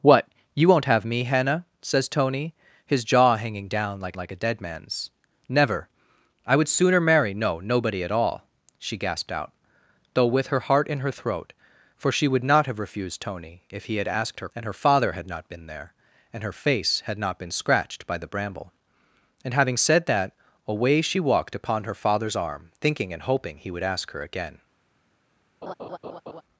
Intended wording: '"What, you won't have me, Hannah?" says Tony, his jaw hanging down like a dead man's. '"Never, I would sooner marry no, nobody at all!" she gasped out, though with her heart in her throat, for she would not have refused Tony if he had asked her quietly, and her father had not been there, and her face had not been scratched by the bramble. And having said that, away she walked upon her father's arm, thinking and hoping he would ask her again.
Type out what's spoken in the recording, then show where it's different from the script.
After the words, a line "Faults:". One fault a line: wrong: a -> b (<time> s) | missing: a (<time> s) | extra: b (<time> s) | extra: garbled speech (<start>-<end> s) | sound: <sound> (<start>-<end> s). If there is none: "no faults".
'"What, you won't have me, Hannah?" says Tony, his jaw hanging down like like a dead man's. '"Never, I would sooner marry no, nobody at all!" she gasped out, though with her heart in her throat, for she would not have refused Tony if he had asked her and her father had not been there, and her face had not been scratched by the bramble. And having said that, away she walked upon her father's arm, thinking and hoping he would ask her again.
Faults:
extra: like (4.2 s)
missing: quietly (14.5 s)
sound: laugh (25.6-26.4 s)